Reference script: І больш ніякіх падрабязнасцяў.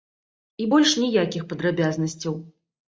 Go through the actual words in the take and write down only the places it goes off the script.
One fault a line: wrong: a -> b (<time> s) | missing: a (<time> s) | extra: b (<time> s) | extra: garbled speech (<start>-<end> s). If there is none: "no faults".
no faults